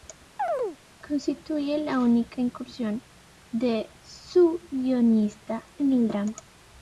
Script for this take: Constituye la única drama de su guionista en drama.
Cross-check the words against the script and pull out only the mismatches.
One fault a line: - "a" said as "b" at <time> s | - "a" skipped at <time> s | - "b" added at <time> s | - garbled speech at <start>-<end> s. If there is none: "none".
- "drama" said as "incursión" at 2.4 s
- "el" added at 5.9 s